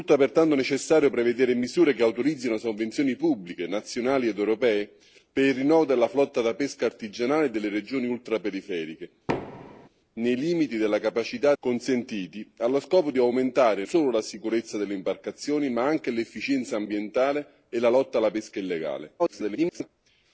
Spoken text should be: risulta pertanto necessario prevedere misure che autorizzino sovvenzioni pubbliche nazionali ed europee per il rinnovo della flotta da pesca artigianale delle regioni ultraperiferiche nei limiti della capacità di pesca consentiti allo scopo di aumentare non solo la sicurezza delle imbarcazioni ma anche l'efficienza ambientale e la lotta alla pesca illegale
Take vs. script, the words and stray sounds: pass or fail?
fail